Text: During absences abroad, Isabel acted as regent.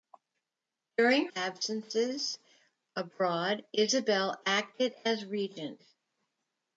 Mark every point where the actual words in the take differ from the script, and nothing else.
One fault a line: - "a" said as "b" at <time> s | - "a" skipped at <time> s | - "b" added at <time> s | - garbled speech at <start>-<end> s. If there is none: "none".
none